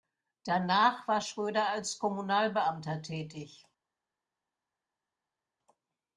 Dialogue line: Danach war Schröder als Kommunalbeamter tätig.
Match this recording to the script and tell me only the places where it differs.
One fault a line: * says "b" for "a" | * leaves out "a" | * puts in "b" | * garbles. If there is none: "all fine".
all fine